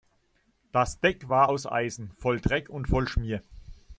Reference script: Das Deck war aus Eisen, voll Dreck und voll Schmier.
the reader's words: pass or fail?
pass